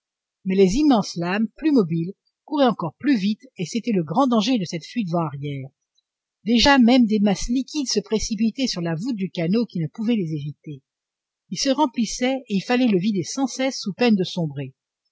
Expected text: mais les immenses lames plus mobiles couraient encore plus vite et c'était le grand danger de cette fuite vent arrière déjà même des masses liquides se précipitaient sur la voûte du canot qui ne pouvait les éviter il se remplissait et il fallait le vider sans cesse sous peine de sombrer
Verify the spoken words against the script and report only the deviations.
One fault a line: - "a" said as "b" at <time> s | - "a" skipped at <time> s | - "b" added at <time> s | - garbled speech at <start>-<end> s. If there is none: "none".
none